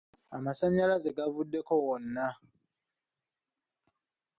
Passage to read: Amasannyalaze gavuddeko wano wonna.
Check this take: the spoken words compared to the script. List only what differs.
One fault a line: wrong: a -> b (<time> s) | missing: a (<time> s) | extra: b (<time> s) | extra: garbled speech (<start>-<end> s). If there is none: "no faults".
missing: wano (1.7 s)